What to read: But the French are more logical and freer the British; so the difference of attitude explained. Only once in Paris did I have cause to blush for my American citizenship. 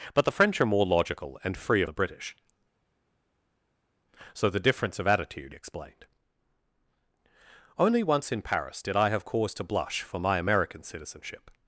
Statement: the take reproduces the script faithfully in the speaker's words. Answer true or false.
true